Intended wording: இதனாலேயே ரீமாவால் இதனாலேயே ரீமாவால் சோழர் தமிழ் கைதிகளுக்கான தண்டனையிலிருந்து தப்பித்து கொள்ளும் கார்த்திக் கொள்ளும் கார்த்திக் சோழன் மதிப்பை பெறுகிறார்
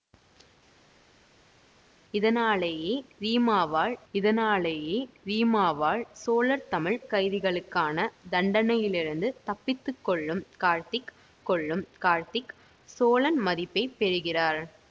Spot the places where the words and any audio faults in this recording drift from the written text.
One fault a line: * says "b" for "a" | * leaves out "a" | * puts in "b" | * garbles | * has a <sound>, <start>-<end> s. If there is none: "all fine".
all fine